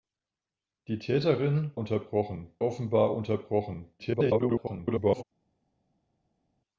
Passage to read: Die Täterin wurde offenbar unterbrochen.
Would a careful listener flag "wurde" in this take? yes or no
yes